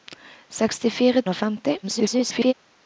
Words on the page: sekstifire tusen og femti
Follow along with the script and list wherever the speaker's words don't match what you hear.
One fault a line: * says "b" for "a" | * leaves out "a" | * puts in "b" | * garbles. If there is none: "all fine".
* leaves out "tusen"
* garbles